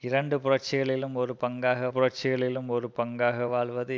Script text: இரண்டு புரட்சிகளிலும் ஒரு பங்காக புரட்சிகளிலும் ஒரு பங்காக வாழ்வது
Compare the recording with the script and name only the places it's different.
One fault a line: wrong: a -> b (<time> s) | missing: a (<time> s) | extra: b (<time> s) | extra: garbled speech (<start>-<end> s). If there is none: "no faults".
no faults